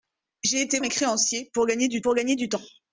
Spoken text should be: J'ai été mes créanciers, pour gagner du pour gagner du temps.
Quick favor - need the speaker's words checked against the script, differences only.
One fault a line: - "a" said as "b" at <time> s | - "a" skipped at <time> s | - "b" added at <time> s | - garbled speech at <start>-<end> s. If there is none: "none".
none